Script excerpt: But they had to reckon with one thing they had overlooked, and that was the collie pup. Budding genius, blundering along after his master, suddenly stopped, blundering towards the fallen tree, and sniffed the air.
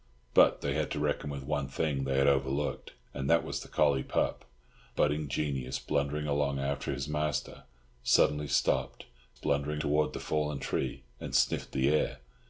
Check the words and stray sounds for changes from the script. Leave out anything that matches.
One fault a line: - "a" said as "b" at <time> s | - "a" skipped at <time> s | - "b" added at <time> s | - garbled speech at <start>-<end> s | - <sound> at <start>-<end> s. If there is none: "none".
none